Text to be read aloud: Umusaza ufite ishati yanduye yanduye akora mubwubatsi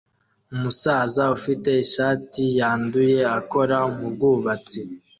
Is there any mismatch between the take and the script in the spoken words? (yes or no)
yes